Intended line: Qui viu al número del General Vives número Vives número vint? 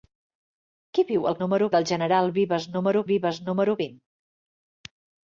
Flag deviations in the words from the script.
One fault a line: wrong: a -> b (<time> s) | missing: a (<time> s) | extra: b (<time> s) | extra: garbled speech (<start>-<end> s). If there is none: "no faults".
no faults